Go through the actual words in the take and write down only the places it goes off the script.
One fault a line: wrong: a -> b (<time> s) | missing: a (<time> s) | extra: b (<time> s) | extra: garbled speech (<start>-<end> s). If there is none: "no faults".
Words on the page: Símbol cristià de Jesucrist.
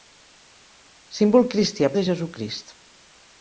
no faults